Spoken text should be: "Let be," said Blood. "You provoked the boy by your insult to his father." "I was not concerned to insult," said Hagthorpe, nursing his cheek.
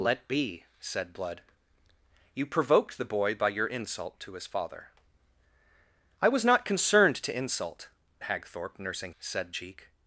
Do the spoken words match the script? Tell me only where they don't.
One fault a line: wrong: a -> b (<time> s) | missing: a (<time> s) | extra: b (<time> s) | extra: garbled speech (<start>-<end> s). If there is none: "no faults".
missing: said (7.9 s)
wrong: his -> said (9.2 s)